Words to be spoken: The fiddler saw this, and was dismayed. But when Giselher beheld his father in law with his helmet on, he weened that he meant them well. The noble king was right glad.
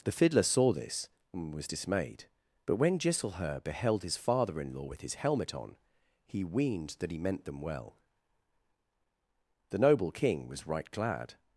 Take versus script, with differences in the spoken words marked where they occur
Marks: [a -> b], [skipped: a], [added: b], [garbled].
The fiddler saw this, and was dismayed. But when Giselher beheld his father in law with his helmet on, he weened that he meant them well. The noble king was right glad.